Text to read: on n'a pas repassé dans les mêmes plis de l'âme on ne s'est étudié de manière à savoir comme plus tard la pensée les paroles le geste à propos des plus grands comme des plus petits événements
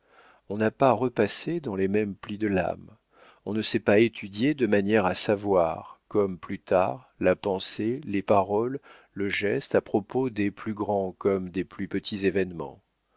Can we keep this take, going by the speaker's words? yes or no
no